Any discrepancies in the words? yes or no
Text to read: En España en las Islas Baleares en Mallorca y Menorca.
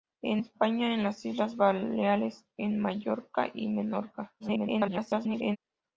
yes